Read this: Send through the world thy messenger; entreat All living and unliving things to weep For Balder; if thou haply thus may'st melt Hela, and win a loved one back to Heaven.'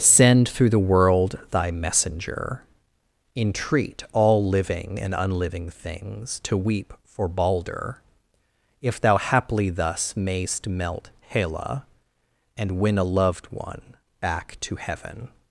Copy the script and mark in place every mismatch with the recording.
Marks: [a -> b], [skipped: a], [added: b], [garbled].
Send through the world thy messenger; entreat All living and unliving things to weep For Balder; if thou haply thus may'st melt Hela, and win a loved one back to Heaven.'